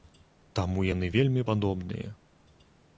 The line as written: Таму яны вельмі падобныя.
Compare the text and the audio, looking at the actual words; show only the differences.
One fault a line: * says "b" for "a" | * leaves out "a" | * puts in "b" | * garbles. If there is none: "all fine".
all fine